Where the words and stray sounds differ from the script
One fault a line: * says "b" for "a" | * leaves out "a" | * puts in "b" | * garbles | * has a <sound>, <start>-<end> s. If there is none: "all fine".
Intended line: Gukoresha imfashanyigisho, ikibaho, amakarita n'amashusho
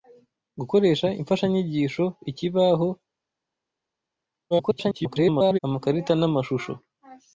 * garbles